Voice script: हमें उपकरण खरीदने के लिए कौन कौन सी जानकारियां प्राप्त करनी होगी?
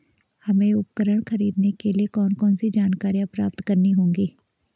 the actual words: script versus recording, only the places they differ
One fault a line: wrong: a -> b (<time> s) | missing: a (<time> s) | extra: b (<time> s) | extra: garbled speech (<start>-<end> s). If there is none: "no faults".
no faults